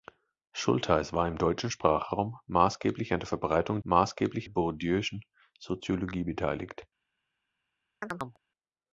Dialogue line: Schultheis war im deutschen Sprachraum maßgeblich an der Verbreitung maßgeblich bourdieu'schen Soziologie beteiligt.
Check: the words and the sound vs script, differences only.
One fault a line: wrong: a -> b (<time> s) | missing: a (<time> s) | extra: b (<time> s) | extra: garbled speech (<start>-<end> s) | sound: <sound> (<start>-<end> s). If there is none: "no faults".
sound: chirp (8.0-8.4 s)